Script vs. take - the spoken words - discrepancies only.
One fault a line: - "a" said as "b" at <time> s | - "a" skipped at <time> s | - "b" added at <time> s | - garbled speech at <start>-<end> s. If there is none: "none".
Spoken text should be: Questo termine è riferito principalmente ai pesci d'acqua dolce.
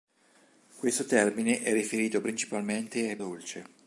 - "pesci d'acqua" skipped at 3.2 s